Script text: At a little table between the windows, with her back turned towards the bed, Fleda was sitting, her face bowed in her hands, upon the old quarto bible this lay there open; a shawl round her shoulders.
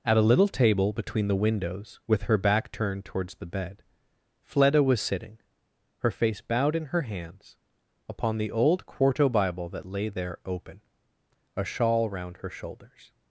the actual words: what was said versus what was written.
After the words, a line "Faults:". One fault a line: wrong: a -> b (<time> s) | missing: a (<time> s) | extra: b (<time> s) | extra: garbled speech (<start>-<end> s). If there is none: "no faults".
At a little table between the windows, with her back turned towards the bed, Fleda was sitting, her face bowed in her hands, upon the old quarto bible that lay there open; a shawl round her shoulders.
Faults:
wrong: this -> that (9.7 s)